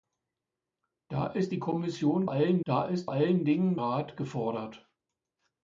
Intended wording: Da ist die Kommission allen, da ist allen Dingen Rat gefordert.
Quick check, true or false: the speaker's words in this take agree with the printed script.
true